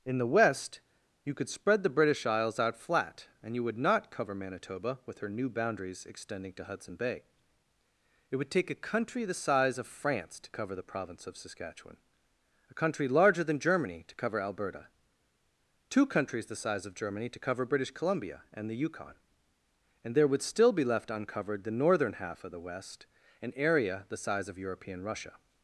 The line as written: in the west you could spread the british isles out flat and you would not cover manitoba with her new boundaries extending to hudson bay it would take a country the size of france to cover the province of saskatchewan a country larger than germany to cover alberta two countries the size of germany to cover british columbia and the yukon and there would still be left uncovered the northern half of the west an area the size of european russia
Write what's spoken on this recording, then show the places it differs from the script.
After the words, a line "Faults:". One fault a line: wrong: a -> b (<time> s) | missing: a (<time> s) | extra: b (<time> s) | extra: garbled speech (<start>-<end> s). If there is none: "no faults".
in the west you could spread the british isles out flat and you would not cover manitoba with her new boundaries extending to hudson bay it would take a country the size of france to cover the province of saskatchewan a country larger than germany to cover alberta two countries the size of germany to cover british columbia and the yukon and there would still be left uncovered the northern half of the west an area the size of european russia
Faults:
no faults